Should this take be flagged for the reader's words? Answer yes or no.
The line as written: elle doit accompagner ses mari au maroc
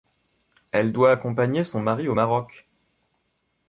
yes